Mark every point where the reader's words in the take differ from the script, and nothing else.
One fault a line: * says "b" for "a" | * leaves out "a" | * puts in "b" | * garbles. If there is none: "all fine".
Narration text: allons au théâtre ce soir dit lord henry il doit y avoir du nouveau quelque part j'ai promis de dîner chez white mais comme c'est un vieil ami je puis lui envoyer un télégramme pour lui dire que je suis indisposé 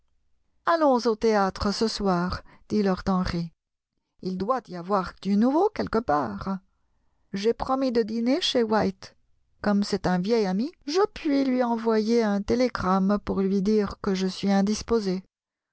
* leaves out "mais"